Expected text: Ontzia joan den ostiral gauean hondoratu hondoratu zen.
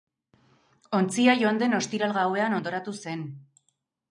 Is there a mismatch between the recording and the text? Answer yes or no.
yes